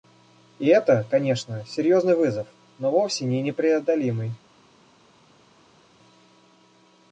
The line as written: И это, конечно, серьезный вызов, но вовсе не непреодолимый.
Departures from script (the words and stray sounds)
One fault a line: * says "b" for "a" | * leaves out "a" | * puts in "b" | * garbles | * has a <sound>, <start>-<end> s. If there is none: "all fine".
all fine